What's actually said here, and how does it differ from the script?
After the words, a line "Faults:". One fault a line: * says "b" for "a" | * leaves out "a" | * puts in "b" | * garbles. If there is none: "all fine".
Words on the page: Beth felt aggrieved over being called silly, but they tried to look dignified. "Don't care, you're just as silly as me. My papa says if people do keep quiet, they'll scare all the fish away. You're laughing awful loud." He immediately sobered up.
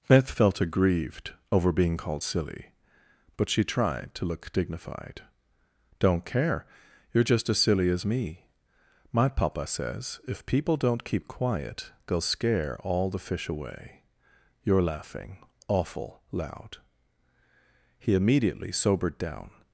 Beth felt aggrieved over being called silly, but she tried to look dignified. "Don't care, you're just as silly as me. My papa says if people don't keep quiet, they'll scare all the fish away. You're laughing awful loud." He immediately sobered down.
Faults:
* says "she" for "they"
* says "don't" for "do"
* says "down" for "up"